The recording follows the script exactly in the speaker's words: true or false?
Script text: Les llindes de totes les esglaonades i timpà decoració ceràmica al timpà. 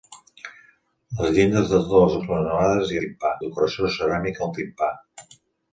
true